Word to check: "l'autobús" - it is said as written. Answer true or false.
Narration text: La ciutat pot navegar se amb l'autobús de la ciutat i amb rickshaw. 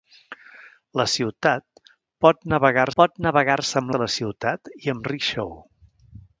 false